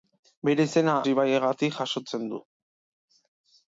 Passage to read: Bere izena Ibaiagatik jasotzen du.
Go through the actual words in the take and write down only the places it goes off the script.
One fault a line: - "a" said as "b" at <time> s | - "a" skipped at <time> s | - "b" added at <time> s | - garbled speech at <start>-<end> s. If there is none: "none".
none